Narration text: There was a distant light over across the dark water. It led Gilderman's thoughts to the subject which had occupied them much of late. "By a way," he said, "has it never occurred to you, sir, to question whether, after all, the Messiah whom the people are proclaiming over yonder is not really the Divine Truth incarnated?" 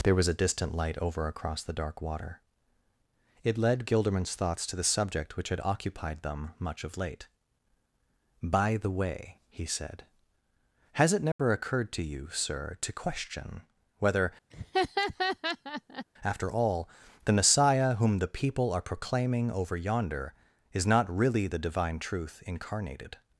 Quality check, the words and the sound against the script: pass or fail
fail